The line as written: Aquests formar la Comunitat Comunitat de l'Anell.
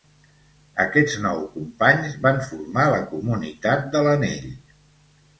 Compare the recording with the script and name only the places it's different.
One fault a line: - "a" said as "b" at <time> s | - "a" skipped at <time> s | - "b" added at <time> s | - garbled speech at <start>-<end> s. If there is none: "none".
- "nou companys van" added at 1.2 s
- "Comunitat" skipped at 3.9 s